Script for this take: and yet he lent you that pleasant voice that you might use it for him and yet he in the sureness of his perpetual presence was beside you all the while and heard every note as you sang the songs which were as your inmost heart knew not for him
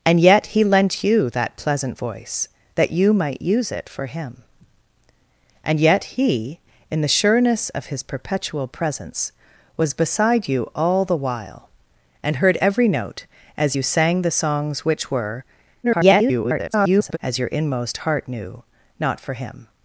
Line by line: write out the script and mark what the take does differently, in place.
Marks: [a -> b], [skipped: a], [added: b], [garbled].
and yet he lent you that pleasant voice that you might use it for him and yet he in the sureness of his perpetual presence was beside you all the while and heard every note as you sang the songs which were [garbled] as your inmost heart knew not for him